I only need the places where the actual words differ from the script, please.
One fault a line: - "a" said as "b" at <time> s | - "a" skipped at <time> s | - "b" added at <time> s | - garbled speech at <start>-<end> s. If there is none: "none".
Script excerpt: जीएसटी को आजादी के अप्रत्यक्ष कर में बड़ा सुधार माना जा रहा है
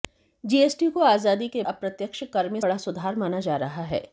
none